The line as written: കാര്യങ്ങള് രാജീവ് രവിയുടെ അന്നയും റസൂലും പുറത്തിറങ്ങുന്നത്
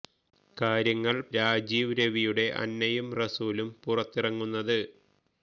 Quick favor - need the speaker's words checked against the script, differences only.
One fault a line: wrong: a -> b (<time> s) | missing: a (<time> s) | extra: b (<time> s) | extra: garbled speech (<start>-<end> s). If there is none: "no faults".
no faults